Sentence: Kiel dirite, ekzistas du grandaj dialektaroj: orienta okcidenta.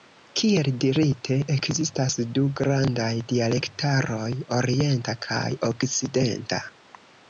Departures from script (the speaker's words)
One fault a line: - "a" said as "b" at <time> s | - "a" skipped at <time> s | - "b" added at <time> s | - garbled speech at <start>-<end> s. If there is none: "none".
- "kaj" added at 5.3 s